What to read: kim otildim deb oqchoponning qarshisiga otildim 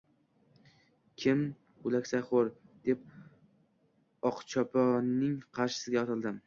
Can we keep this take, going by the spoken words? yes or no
no